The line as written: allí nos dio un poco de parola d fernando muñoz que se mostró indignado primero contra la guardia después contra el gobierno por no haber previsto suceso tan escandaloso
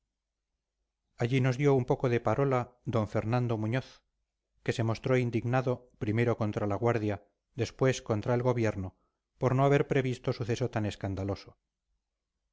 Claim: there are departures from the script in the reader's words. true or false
false